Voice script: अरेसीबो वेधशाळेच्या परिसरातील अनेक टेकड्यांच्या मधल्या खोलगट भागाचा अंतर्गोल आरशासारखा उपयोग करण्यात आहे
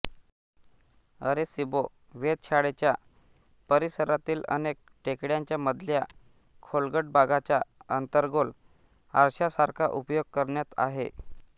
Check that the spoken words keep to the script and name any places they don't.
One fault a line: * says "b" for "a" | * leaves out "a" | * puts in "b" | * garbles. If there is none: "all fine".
all fine